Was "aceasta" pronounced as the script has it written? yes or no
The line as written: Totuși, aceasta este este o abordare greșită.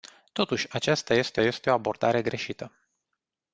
yes